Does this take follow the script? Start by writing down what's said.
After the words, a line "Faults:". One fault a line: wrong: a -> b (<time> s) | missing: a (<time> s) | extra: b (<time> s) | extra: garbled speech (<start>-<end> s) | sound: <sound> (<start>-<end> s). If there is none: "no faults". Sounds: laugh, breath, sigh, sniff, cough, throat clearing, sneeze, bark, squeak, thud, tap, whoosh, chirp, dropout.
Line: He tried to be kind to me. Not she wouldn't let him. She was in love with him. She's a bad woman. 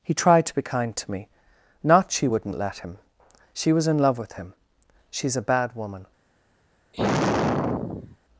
He tried to be kind to me. Not she wouldn't let him. She was in love with him. She's a bad woman.
Faults:
sound: sigh (6.9-8.2 s)